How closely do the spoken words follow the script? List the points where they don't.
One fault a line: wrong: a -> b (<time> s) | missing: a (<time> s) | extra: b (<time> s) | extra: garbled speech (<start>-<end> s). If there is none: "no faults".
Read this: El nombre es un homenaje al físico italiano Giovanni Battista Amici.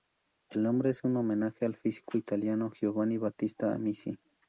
no faults